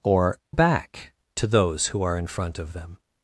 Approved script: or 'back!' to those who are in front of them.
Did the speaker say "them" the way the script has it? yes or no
yes